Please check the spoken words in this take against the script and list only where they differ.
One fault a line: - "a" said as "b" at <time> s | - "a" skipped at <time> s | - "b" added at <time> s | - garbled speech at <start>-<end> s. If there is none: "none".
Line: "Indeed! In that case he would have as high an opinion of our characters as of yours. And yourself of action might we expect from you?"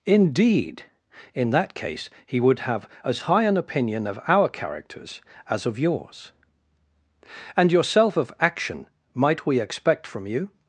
none